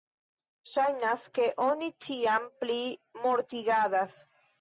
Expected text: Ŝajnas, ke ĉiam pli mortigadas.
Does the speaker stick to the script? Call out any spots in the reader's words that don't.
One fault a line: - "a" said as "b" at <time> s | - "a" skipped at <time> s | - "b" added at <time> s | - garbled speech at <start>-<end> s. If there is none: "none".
- "oni" added at 1.6 s